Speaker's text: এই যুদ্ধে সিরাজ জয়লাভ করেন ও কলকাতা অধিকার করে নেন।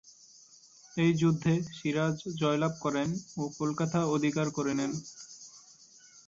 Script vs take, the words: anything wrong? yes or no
no